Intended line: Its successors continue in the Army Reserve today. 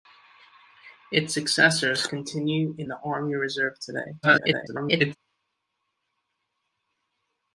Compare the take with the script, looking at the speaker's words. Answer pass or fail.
fail